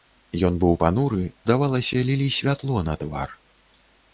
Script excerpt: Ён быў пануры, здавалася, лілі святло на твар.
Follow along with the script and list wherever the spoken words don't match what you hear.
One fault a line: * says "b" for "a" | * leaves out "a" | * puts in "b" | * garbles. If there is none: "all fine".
all fine